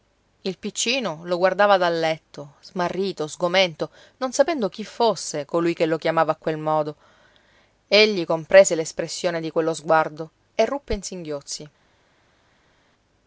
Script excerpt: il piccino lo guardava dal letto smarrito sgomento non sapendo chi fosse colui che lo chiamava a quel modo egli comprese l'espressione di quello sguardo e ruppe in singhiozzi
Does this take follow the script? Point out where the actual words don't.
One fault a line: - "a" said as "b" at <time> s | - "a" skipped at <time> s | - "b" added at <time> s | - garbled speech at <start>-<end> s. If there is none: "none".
none